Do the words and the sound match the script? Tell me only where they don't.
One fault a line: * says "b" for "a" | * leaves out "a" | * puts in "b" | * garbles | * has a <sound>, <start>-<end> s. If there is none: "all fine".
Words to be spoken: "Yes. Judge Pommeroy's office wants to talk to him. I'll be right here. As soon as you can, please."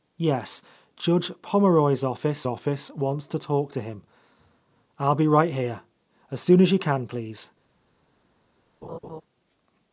* puts in "office"
* has a laugh, 8.8-9.2 s